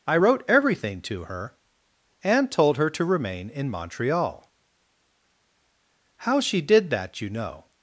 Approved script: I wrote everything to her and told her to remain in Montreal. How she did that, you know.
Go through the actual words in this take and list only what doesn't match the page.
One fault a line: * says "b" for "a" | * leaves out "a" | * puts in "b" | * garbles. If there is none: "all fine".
all fine